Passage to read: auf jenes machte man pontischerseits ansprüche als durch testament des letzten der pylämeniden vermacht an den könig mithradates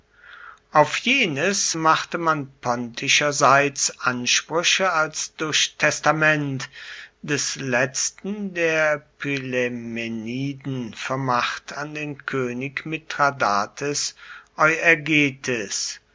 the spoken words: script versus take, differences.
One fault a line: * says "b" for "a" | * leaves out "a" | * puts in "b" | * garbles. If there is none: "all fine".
all fine